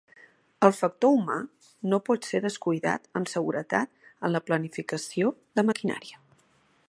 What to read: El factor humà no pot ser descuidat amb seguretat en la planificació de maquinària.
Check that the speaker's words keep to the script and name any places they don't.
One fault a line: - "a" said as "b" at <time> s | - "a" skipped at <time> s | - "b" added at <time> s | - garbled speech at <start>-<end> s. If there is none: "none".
none